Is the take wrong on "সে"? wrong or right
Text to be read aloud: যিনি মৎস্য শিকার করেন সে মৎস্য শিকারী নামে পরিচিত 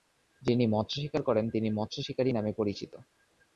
wrong